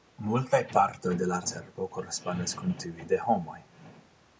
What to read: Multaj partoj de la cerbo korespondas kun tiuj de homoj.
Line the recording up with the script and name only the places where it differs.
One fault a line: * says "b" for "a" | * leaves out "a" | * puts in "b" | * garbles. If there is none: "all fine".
all fine